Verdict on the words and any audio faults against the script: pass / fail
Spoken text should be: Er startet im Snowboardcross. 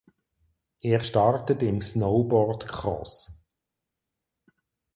pass